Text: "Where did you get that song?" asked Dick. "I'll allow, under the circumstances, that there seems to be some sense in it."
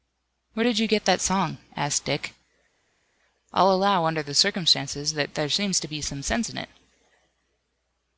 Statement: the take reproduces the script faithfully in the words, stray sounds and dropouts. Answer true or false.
true